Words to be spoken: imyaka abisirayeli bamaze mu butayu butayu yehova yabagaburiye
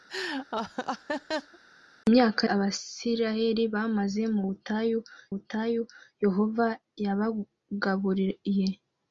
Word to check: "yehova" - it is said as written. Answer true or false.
true